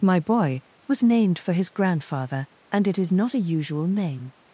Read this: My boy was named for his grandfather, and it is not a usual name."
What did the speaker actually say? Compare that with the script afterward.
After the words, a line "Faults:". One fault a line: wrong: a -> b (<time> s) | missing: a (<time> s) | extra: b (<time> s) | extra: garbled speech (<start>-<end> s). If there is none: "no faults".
My boy was named for his grandfather, and it is not a usual name."
Faults:
no faults